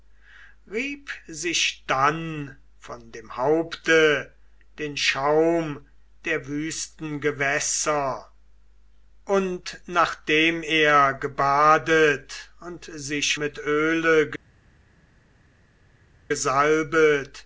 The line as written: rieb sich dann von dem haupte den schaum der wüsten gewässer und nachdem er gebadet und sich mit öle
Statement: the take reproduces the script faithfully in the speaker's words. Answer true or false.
true